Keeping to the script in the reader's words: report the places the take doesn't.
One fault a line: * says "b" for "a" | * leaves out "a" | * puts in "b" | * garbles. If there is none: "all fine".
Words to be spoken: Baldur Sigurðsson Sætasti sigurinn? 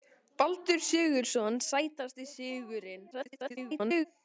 * garbles